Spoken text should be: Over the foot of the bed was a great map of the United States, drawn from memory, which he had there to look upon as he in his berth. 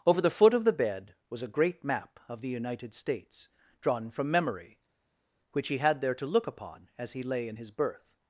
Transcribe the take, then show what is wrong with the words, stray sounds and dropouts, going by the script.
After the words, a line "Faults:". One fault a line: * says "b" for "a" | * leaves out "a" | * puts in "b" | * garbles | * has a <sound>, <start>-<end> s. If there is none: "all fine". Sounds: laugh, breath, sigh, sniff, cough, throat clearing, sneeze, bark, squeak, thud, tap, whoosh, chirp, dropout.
Over the foot of the bed was a great map of the United States, drawn from memory, which he had there to look upon as he lay in his berth.
Faults:
* puts in "lay"